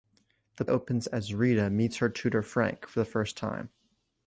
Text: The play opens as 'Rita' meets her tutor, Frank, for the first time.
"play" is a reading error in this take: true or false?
true